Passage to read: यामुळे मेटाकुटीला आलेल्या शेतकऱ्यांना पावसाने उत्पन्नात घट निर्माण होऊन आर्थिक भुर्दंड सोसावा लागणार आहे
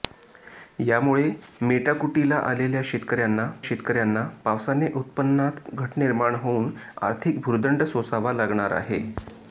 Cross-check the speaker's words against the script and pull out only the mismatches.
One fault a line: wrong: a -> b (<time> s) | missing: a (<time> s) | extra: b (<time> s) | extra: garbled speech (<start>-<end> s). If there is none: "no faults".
extra: शेतकऱ्यांना (3.6 s)